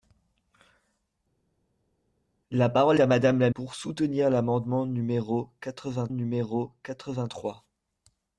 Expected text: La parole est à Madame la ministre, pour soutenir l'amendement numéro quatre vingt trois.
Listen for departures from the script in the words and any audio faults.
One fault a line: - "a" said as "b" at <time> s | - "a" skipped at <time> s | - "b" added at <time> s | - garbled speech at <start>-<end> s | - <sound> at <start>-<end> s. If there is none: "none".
- "est" skipped at 3.0 s
- "ministre" skipped at 3.5 s
- "numéro quatre vingt" added at 6.1 s